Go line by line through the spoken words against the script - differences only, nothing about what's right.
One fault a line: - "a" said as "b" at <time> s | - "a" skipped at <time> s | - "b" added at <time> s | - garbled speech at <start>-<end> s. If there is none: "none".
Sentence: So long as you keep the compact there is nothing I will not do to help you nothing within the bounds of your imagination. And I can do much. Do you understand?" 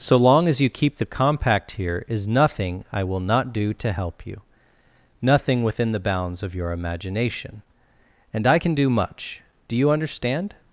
- "there" said as "here" at 1.8 s